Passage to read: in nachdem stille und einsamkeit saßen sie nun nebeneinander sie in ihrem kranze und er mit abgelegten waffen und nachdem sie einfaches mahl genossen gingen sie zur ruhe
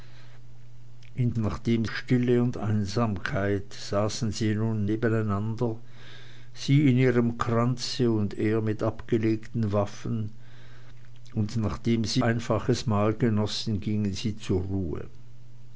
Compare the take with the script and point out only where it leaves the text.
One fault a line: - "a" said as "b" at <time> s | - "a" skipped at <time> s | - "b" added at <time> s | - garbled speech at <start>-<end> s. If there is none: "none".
none